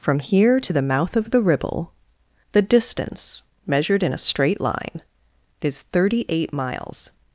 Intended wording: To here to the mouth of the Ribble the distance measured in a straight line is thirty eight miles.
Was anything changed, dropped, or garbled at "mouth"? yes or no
no